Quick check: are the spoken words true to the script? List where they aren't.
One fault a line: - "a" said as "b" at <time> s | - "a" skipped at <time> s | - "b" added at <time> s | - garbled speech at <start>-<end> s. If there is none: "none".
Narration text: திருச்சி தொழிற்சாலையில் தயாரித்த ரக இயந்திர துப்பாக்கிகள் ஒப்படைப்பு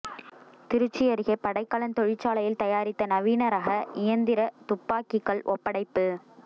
- "அருகே படைக்கலன்" added at 1.1 s
- "நவீன" added at 3.1 s